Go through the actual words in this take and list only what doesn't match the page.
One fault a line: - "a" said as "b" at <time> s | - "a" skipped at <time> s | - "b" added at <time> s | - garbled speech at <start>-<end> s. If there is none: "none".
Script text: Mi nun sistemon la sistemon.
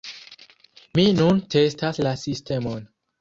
- "sistemon" said as "testas" at 1.6 s